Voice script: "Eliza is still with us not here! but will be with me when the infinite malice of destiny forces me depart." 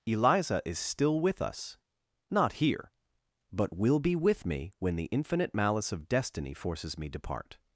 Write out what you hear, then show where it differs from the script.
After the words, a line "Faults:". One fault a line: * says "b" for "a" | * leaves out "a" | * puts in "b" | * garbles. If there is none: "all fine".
"Eliza is still with us not here! but will be with me when the infinite malice of destiny forces me depart."
Faults:
all fine